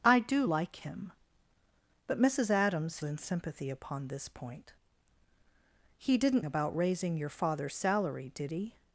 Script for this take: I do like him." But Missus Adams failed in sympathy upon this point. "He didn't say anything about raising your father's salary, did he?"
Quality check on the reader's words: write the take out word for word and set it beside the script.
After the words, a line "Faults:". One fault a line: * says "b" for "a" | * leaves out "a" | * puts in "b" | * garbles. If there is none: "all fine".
I do like him." But Missus Adams in sympathy upon this point. "He didn't about raising your father's salary, did he?"
Faults:
* leaves out "failed"
* leaves out "say anything"